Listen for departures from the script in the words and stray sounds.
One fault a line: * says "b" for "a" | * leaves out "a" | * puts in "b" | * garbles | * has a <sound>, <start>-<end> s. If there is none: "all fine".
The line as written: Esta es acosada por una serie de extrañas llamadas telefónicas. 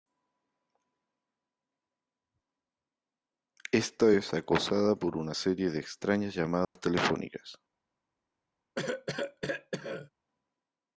* has a dropout, 6.6-6.8 s
* has a cough, 8.8-10.1 s